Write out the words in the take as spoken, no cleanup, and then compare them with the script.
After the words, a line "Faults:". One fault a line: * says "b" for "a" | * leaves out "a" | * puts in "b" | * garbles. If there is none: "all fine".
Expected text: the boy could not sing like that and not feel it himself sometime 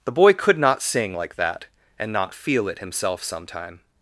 the boy could not sing like that and not feel it himself sometime
Faults:
all fine